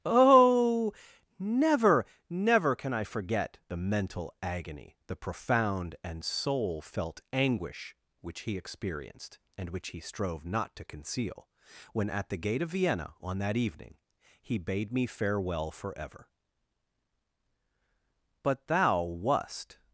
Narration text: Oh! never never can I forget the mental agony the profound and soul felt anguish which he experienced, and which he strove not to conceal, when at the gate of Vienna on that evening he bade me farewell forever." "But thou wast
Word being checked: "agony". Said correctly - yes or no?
yes